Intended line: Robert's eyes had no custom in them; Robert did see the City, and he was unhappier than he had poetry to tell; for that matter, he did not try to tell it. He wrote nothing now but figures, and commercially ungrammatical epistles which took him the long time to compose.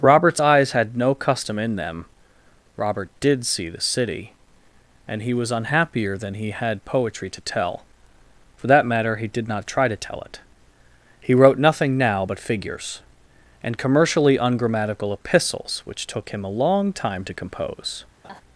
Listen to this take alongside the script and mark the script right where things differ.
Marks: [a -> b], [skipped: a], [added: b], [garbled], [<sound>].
Robert's eyes had no custom in them; Robert did see the City, and he was unhappier than he had poetry to tell; for that matter, he did not try to tell it. He wrote nothing now but figures, and commercially ungrammatical epistles which took him [the -> a] long time to compose. [laugh]